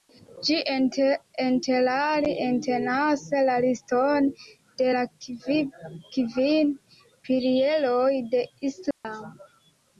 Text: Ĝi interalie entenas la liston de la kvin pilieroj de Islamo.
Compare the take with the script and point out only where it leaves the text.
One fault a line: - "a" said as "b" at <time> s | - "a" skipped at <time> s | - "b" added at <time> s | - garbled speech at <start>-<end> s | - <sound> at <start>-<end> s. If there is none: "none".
- dropout at 8.9-9.0 s